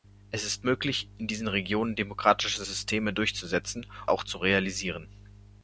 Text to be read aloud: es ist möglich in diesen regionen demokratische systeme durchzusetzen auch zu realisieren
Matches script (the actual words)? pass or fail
pass